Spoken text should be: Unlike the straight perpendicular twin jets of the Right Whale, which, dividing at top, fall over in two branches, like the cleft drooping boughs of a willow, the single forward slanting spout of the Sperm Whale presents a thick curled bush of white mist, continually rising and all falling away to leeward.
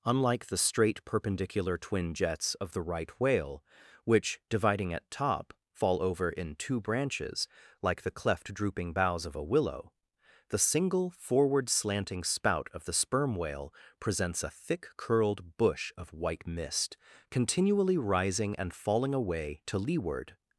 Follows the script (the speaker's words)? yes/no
no